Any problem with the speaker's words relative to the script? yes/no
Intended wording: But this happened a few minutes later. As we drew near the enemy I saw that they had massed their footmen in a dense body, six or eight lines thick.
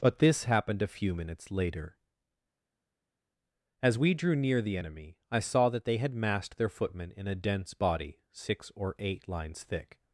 no